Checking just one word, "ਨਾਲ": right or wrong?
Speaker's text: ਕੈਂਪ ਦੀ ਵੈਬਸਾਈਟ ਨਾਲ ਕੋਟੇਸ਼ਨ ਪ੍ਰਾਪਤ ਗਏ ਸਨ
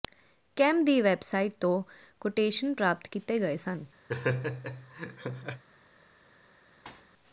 wrong